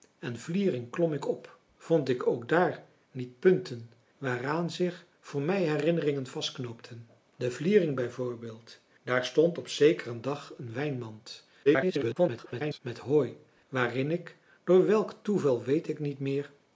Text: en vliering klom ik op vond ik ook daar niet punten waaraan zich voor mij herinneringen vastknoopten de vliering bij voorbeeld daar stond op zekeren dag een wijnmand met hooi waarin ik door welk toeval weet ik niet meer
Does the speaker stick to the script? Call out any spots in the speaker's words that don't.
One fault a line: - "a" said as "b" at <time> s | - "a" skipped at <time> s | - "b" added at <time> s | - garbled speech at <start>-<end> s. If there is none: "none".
- garbled speech at 11.7-12.8 s